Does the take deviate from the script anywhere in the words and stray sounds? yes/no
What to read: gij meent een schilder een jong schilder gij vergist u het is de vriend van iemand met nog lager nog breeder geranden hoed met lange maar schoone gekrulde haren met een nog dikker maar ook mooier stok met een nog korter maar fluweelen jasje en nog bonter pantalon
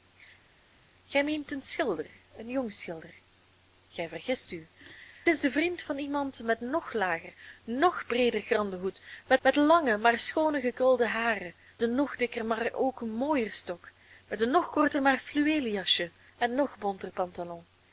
yes